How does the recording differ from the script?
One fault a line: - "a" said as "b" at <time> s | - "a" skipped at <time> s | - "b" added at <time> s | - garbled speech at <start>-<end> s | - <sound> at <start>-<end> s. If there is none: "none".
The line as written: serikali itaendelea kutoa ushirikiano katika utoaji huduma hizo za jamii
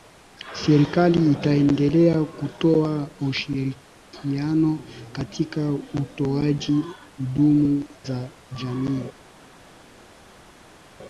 - "hizo" skipped at 7.8 s